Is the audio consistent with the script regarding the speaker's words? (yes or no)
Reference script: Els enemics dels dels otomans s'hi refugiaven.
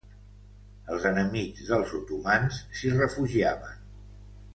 no